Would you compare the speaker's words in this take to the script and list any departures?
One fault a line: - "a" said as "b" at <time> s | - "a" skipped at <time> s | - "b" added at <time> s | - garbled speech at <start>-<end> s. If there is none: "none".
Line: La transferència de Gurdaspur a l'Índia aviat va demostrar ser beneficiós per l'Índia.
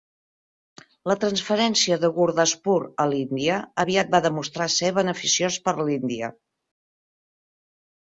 none